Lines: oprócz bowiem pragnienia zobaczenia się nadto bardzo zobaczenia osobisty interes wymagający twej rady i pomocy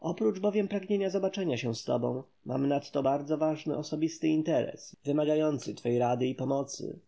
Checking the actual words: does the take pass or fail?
fail